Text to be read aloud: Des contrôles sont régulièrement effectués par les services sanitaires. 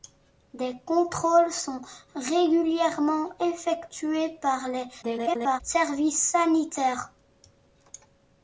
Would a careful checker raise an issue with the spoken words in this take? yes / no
yes